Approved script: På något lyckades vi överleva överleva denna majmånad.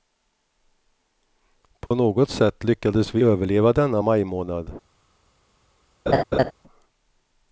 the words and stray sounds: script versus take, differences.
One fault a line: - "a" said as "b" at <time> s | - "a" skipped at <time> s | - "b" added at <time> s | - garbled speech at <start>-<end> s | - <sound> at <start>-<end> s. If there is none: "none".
- dropout at 1.9-1.9 s
- "sätt" added at 2.3 s
- "överleva" skipped at 3.7 s
- laugh at 6.1-6.5 s